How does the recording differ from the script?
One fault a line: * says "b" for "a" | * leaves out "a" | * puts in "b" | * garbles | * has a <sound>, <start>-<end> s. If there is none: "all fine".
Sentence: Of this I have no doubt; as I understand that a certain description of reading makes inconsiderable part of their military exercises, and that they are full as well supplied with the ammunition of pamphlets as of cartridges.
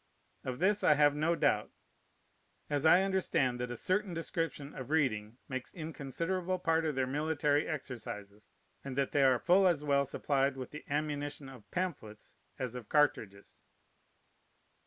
all fine